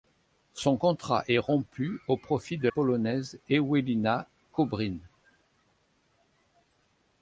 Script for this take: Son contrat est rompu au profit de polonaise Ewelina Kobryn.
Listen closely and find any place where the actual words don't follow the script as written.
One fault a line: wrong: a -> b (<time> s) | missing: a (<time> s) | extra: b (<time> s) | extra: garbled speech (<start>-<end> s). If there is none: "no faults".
no faults